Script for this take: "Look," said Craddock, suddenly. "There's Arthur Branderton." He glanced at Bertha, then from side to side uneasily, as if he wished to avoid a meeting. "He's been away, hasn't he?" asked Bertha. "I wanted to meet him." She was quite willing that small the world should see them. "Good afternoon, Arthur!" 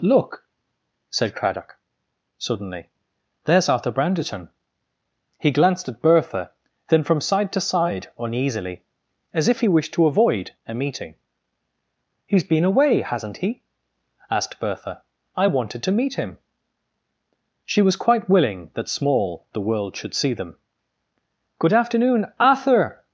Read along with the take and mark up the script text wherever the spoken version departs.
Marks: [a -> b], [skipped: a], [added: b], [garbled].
"Look," said Craddock, suddenly. "There's Arthur Branderton." He glanced at Bertha, then from side to side uneasily, as if he wished to avoid a meeting. "He's been away, hasn't he?" asked Bertha. "I wanted to meet him." She was quite willing that small the world should see them. "Good afternoon, Arthur!"